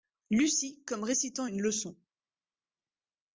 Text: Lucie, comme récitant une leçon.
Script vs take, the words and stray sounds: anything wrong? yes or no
no